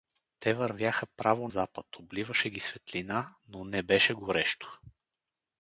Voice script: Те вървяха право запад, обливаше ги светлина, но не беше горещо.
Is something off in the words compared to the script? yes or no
no